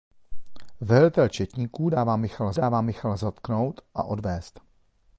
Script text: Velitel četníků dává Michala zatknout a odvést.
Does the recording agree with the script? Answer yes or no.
no